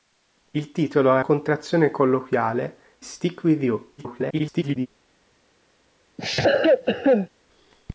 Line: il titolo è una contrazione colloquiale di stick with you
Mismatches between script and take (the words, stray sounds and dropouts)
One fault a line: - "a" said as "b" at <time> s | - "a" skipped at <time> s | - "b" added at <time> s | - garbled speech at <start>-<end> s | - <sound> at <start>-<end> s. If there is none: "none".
- "una" skipped at 1.2 s
- "di" skipped at 2.8 s
- garbled speech at 4.0-4.9 s
- cough at 6.2-7.3 s